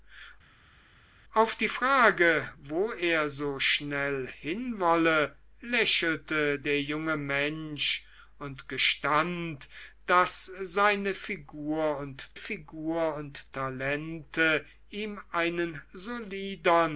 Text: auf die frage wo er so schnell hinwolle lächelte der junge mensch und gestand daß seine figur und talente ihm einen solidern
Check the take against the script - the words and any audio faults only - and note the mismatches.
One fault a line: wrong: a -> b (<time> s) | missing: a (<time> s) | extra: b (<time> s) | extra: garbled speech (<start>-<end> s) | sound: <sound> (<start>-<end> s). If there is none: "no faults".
extra: figur und (12.4 s)